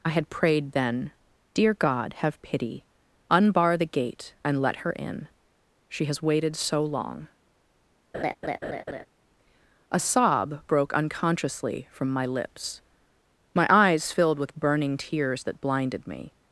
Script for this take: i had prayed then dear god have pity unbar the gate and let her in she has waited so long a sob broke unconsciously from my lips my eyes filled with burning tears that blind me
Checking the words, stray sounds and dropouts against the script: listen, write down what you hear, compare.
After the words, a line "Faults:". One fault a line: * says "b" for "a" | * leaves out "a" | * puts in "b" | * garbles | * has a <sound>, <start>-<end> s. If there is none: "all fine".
i had prayed then dear god have pity unbar the gate and let her in she has waited so long a sob broke unconsciously from my lips my eyes filled with burning tears that blinded me
Faults:
* has a laugh, 8.1-9.1 s
* says "blinded" for "blind"